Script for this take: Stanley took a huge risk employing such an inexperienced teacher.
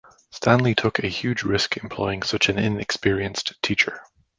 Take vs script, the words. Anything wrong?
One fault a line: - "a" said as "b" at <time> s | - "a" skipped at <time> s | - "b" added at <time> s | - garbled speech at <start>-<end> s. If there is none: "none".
none